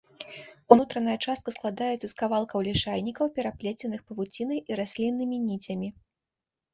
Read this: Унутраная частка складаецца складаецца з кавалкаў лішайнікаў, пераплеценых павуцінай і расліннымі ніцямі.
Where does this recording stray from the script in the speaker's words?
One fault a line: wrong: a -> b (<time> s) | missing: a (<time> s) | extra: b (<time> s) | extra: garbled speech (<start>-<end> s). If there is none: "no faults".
missing: складаецца (2.0 s)